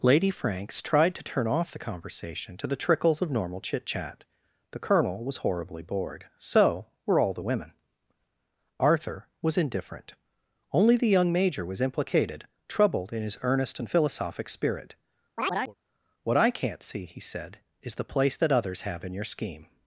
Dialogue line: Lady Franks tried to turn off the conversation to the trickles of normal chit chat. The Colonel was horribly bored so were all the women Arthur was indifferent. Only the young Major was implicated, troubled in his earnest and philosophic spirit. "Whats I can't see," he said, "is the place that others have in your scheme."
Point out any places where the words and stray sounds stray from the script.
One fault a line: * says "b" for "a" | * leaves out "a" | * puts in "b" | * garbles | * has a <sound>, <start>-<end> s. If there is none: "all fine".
* has a chirp, 15.4-15.8 s
* says "What" for "Whats"